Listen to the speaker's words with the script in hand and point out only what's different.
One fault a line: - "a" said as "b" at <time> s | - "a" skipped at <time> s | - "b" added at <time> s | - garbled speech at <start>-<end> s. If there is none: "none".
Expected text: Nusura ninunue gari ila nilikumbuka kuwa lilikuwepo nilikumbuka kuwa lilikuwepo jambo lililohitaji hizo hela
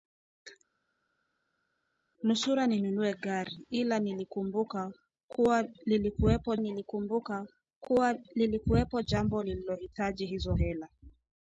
none